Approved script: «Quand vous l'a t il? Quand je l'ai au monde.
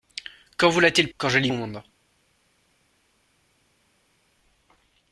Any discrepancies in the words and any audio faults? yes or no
no